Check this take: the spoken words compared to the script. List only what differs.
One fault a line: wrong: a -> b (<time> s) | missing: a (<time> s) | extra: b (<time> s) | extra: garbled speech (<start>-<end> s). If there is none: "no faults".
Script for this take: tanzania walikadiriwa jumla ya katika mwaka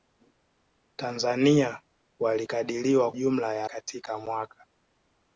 no faults